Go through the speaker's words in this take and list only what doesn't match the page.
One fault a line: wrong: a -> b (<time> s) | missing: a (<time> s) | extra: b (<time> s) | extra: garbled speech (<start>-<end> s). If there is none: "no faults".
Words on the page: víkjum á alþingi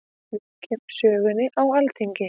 extra: sögunni (1.0 s)